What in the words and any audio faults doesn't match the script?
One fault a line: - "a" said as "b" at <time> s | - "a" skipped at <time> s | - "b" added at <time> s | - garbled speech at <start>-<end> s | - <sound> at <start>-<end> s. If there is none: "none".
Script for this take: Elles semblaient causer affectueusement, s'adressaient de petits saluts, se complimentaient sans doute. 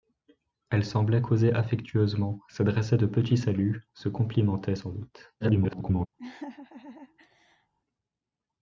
- garbled speech at 5.4-6.1 s
- laugh at 6.2-7.7 s